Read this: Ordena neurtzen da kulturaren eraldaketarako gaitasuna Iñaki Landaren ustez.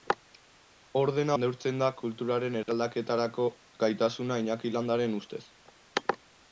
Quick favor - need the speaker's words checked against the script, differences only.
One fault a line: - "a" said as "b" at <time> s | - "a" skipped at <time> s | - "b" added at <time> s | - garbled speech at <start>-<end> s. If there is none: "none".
none